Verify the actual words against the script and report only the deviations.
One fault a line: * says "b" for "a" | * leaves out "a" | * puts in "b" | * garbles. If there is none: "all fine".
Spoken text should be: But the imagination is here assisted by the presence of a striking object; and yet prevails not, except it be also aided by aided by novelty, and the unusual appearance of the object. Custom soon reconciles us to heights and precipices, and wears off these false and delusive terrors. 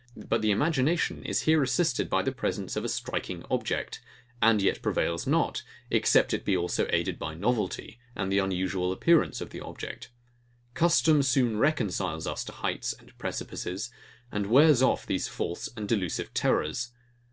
* leaves out "aided by"